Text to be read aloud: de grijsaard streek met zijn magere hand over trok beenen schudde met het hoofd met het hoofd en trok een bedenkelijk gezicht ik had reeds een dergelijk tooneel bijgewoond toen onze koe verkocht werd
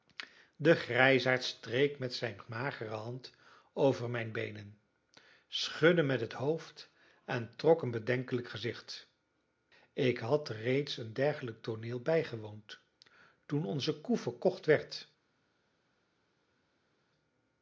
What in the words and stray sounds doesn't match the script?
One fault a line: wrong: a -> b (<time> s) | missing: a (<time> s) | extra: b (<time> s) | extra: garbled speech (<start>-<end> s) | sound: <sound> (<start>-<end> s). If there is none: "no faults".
wrong: trok -> mijn (4.1 s)
missing: met het hoofd (6.9 s)